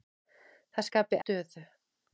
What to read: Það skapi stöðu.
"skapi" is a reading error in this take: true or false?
false